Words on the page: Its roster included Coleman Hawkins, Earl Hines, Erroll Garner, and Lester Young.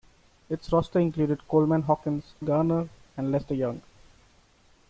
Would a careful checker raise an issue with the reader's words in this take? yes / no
yes